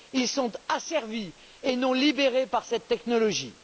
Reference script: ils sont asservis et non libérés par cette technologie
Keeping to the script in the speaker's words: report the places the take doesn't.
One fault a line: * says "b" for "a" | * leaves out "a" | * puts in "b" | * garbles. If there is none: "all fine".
all fine